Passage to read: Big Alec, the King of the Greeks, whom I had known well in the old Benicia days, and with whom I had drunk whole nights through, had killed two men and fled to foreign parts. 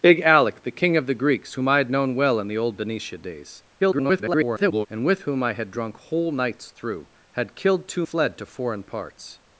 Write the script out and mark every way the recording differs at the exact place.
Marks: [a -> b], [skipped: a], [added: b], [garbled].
Big Alec, the King of the Greeks, whom I had known well in the old Benicia days, [garbled] and with whom I had drunk whole nights through, had killed two [skipped: men and] fled to foreign parts.